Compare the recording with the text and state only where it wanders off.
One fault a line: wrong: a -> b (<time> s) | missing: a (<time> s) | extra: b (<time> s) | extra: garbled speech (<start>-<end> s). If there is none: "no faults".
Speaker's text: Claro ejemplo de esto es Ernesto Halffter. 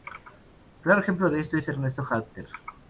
no faults